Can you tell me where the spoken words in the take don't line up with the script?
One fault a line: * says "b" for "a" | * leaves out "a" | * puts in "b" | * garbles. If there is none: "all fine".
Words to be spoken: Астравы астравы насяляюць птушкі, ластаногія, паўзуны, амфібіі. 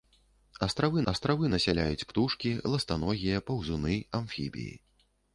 all fine